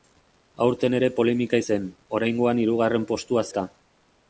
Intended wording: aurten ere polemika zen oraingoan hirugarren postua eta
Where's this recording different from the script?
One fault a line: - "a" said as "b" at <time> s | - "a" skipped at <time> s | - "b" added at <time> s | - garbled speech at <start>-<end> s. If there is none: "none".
none